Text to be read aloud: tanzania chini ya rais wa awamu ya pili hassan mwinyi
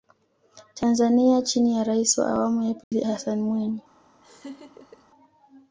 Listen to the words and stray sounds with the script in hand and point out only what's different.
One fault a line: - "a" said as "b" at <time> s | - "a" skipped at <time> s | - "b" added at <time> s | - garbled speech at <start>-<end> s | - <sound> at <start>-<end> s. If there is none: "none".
- dropout at 2.8-2.9 s
- laugh at 4.2-5.1 s